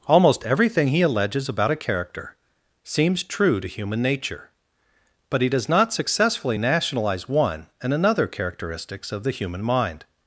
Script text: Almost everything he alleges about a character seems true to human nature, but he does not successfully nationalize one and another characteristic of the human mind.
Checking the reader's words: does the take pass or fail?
fail